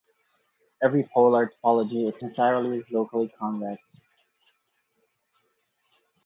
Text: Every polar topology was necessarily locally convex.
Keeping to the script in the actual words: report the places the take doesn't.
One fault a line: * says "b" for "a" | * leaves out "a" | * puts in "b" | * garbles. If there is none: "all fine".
* says "is" for "was"